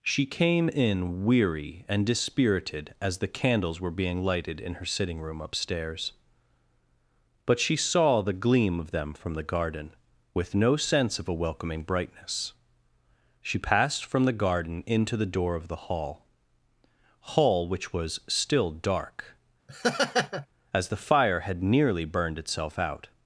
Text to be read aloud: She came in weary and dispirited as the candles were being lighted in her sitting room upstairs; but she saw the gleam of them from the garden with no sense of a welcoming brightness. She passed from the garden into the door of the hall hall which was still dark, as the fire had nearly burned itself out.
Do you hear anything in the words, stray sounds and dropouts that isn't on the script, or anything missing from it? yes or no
yes